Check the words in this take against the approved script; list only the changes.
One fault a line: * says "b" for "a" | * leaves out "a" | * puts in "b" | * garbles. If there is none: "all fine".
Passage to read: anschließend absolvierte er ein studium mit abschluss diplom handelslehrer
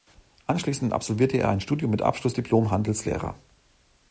all fine